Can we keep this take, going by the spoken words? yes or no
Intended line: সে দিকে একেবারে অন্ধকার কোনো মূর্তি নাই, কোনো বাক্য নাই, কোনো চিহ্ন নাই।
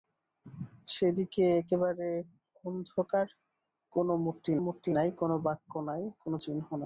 no